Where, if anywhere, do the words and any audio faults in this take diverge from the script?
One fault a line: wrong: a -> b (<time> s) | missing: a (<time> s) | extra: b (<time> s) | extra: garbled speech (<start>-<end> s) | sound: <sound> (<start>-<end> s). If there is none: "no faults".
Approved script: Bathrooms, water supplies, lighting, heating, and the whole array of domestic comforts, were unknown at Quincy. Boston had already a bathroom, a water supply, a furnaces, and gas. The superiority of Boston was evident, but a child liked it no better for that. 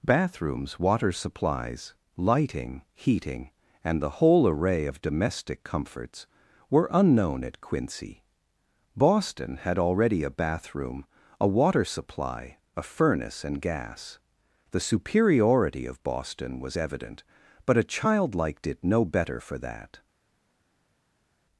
wrong: furnaces -> furnace (12.8 s)